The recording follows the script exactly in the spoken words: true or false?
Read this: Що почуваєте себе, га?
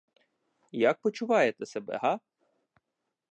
false